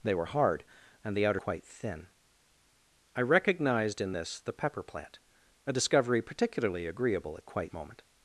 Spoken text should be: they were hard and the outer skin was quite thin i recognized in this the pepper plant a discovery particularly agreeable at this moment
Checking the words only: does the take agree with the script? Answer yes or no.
no